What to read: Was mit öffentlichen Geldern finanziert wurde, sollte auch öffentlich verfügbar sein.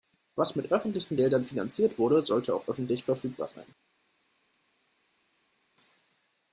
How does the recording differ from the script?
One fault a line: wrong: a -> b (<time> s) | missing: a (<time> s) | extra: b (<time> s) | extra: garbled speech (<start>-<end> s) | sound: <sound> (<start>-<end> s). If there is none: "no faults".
no faults